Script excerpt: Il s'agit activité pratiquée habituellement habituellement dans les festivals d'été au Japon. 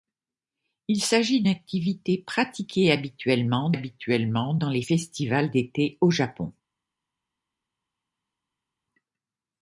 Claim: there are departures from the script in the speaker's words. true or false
false